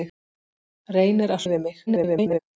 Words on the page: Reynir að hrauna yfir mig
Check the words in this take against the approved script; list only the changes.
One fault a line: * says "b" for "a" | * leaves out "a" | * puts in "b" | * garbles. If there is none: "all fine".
* leaves out "hrauna"
* garbles